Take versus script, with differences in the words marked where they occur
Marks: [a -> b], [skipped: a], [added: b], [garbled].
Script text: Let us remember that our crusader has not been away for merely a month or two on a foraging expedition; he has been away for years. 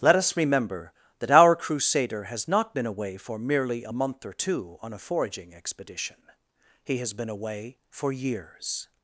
Let us remember that our crusader has not been away for merely a month or two on a foraging expedition; he has been away for years.